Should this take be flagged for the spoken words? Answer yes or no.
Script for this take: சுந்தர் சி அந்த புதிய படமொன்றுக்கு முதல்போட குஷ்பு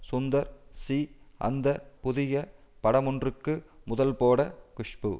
no